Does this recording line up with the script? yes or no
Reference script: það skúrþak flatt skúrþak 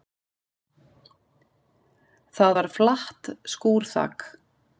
no